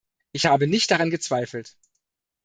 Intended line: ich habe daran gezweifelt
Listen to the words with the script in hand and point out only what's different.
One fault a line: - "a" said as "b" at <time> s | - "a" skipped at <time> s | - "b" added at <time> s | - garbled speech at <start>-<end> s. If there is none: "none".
- "nicht" added at 0.7 s